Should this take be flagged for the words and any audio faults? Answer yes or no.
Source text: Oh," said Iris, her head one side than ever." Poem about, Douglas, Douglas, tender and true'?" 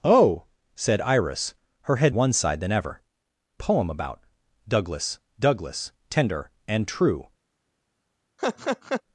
yes